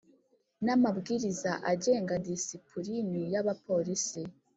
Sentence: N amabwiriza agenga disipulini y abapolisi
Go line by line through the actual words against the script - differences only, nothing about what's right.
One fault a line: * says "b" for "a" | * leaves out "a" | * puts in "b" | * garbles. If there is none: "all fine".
all fine